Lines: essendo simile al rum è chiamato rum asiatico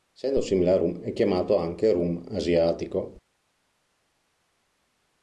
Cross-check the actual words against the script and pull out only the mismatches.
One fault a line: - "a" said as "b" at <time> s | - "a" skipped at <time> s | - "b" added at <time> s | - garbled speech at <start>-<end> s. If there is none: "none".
- "anche" added at 1.6 s